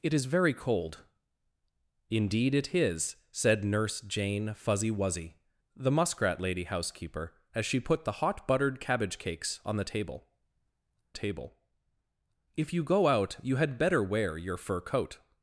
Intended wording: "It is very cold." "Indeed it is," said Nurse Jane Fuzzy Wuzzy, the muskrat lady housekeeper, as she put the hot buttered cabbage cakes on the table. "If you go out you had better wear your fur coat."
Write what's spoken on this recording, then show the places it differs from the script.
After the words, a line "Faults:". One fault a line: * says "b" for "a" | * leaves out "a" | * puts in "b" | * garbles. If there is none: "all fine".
"It is very cold." "Indeed it is," said Nurse Jane Fuzzy Wuzzy, the muskrat lady housekeeper, as she put the hot buttered cabbage cakes on the table table. "If you go out you had better wear your fur coat."
Faults:
* puts in "table"